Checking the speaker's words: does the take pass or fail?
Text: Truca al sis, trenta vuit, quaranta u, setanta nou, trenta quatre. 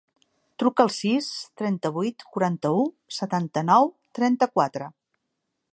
pass